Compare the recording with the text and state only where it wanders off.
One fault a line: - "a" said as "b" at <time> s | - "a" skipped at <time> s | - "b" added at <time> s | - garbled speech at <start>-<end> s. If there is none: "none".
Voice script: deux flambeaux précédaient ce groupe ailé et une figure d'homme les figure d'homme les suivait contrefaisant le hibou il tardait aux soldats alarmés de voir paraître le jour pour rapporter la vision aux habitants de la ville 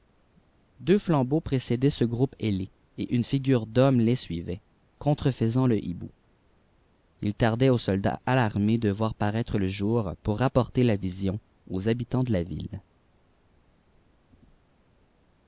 - "figure d'homme les" skipped at 4.2 s